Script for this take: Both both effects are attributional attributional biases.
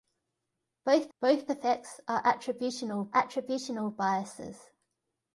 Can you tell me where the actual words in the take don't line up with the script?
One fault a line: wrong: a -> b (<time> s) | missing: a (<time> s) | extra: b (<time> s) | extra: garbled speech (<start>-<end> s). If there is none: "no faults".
no faults